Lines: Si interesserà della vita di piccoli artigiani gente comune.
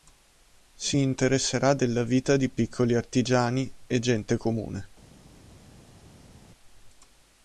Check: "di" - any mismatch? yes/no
no